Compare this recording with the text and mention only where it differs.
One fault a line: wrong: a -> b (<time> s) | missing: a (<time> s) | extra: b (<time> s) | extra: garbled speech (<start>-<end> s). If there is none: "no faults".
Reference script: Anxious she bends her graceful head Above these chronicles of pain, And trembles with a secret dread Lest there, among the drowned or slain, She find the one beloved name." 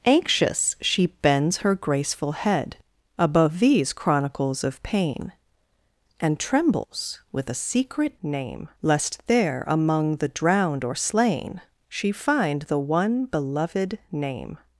wrong: dread -> name (8.2 s)